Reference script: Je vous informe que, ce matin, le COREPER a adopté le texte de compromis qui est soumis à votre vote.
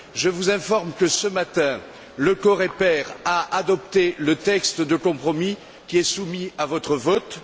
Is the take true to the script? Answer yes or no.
yes